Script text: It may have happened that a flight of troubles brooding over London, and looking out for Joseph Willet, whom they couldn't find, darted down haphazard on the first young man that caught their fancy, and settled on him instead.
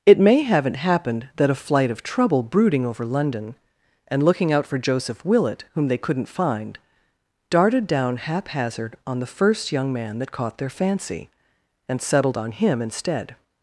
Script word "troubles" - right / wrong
wrong